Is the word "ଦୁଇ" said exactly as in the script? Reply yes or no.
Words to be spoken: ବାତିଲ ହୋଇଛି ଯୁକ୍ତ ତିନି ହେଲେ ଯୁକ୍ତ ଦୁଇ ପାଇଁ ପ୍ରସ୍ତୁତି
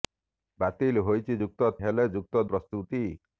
no